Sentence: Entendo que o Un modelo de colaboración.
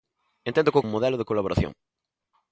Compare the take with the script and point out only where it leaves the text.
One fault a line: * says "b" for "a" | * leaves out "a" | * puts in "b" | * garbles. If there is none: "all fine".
all fine